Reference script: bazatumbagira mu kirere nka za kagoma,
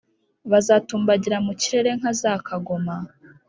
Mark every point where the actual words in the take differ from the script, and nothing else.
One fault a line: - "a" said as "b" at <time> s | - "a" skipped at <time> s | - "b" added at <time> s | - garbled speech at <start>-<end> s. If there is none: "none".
none